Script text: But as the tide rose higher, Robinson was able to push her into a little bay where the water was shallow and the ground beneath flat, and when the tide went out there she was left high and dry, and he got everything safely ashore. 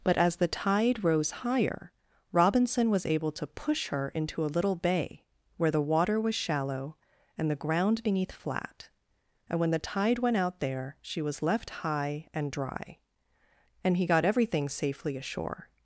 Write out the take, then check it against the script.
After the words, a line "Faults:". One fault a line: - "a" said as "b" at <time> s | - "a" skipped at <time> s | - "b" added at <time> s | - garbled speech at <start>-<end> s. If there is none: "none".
But as the tide rose higher, Robinson was able to push her into a little bay where the water was shallow and the ground beneath flat, and when the tide went out there she was left high and dry, and he got everything safely ashore.
Faults:
none